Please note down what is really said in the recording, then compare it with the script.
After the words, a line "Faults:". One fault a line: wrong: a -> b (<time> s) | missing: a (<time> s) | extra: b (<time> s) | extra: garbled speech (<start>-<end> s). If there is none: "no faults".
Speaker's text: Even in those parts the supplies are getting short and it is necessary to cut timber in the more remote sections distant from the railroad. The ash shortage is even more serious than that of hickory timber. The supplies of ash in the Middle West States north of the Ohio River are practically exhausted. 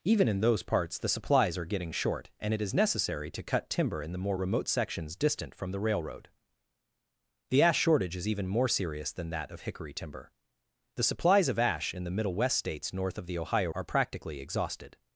Even in those parts the supplies are getting short and it is necessary to cut timber in the more remote sections distant from the railroad. The ash shortage is even more serious than that of hickory timber. The supplies of ash in the Middle West States north of the Ohio Are practically exhausted.
Faults:
missing: River (13.7 s)